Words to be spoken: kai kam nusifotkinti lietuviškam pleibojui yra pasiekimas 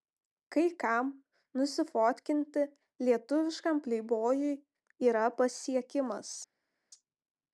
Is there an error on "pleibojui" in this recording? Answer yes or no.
no